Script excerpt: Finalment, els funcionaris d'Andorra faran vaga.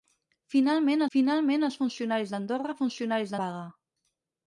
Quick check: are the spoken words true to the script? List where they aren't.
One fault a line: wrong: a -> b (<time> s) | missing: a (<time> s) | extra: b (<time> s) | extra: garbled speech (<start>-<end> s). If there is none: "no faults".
extra: finalment (1.1 s)
wrong: faran -> funcionaris (2.8 s)